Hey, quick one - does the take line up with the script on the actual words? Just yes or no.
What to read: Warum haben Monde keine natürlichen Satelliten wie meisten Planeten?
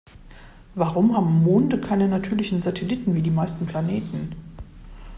no